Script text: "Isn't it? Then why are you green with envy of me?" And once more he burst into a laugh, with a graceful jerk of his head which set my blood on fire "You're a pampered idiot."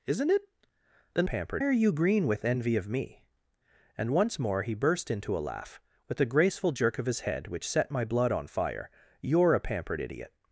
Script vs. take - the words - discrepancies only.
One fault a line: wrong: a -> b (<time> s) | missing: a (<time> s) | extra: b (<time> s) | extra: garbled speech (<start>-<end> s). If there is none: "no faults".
wrong: why -> pampered (1.2 s)